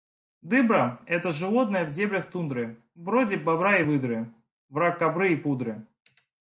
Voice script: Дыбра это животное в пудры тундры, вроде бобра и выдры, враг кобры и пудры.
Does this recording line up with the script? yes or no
no